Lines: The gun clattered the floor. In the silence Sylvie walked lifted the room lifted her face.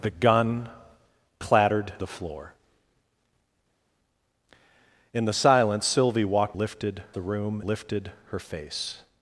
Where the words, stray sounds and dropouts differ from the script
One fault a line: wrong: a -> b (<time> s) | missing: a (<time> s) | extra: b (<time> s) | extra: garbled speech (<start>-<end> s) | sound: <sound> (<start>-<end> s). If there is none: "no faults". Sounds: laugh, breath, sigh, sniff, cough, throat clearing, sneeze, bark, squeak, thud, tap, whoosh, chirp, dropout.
no faults